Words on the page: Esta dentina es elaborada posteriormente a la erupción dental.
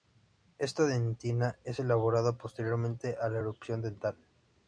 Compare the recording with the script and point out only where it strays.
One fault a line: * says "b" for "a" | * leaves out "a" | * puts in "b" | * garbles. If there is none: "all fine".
all fine